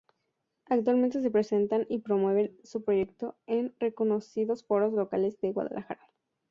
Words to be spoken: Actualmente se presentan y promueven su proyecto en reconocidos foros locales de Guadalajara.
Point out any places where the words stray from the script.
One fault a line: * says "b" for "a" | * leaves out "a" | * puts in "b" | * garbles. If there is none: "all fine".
all fine